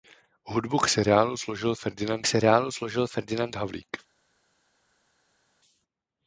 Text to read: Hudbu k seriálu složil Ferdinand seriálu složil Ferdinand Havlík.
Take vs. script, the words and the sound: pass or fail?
pass